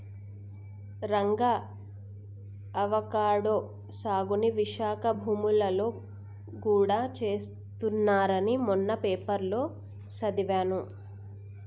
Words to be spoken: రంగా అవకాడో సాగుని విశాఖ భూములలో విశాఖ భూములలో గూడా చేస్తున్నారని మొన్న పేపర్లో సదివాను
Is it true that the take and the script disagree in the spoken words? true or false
true